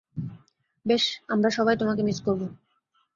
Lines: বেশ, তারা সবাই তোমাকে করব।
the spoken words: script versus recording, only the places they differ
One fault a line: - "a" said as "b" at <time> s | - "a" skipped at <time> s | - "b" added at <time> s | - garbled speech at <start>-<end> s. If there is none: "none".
- "তারা" said as "আমরা" at 1.3 s
- "মিস" added at 2.0 s